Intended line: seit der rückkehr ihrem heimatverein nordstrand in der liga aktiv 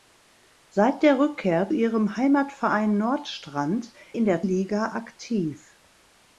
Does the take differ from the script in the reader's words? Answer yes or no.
no